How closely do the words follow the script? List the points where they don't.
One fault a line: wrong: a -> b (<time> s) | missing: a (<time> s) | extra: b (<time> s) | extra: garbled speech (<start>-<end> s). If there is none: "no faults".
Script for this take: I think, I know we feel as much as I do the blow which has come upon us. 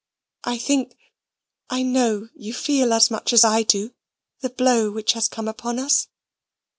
wrong: we -> you (2.3 s)